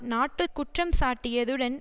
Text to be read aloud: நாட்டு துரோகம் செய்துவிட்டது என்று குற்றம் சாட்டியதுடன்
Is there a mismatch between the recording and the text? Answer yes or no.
yes